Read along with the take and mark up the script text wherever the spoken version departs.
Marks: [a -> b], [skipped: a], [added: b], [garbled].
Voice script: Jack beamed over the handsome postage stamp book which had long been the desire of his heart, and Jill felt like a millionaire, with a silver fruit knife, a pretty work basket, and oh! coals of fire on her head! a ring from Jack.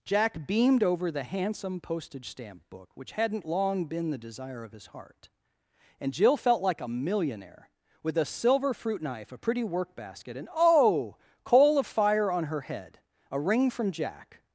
Jack beamed over the handsome postage stamp book which [had -> hadn't] long been the desire of his heart, and Jill felt like a millionaire, with a silver fruit knife, a pretty work basket, and oh! [coals -> coal] of fire on her head! a ring from Jack.